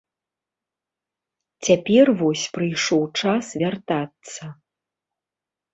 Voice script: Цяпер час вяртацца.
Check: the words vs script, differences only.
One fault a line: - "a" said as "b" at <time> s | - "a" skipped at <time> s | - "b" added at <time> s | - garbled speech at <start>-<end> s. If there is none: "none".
- "вось прыйшоў" added at 2.2 s